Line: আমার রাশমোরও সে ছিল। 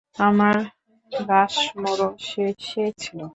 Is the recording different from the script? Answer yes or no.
yes